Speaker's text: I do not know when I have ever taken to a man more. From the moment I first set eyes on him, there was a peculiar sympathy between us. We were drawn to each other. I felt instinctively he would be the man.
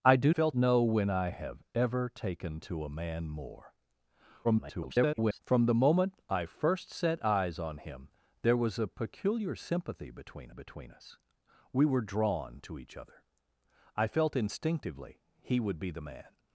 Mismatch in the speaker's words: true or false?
true